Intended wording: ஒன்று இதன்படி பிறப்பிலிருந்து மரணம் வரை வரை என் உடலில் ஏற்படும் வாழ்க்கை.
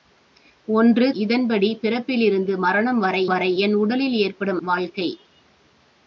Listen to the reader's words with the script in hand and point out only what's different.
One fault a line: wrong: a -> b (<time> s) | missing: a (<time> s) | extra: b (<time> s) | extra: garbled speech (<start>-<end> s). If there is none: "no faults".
no faults